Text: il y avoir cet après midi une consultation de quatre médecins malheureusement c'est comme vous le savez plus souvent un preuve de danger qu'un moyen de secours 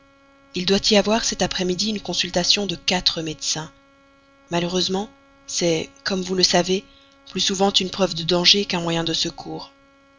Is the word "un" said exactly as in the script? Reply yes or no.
no